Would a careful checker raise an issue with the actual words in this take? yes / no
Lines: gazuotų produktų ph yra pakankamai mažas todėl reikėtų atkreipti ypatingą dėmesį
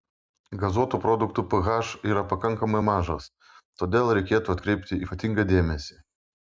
no